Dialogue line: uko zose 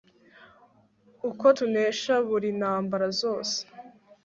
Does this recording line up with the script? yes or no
no